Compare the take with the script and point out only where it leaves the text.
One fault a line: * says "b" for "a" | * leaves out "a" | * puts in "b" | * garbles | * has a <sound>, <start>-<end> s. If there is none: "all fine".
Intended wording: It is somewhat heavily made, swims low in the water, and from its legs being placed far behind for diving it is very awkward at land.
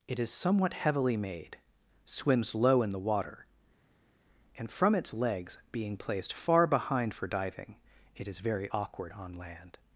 * says "on" for "at"